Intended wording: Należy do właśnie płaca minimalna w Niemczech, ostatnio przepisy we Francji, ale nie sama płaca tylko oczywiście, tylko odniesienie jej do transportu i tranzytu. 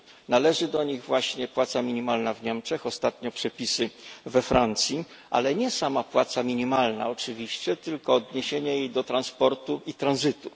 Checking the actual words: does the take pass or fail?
fail